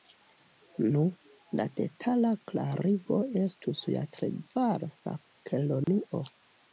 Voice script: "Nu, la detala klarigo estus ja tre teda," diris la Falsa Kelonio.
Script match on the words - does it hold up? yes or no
no